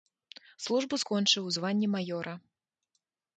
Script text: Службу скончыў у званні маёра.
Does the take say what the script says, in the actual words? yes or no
yes